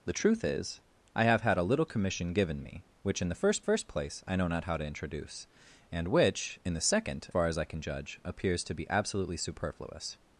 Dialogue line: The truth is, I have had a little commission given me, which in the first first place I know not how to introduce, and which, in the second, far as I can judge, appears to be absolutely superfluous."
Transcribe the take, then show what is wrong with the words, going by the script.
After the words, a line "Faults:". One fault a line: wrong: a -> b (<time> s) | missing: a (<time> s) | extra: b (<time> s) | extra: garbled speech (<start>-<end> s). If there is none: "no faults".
The truth is, I have had a little commission given me, which in the first first place I know not how to introduce, and which, in the second, far as I can judge, appears to be absolutely superfluous."
Faults:
no faults